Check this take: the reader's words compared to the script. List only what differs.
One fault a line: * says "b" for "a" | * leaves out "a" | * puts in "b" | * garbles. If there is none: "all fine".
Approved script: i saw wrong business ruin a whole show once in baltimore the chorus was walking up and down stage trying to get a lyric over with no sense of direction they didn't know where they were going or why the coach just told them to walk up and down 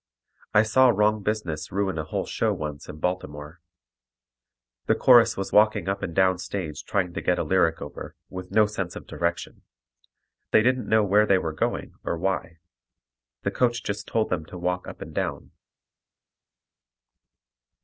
all fine